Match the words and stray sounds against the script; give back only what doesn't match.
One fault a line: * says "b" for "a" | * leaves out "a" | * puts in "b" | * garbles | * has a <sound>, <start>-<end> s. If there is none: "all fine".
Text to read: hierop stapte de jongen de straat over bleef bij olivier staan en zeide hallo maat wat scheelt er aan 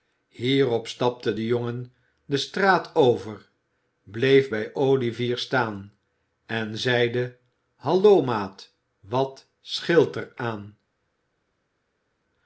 all fine